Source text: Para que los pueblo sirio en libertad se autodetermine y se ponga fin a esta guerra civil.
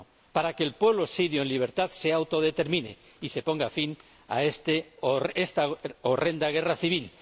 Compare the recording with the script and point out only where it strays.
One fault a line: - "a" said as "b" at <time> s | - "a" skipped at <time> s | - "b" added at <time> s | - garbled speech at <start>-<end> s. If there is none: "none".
- "los" said as "el" at 0.6 s
- "horrenda" added at 6.0 s